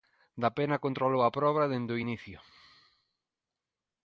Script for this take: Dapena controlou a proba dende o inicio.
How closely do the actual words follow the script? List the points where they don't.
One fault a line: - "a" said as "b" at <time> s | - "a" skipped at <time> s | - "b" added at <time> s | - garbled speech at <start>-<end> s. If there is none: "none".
none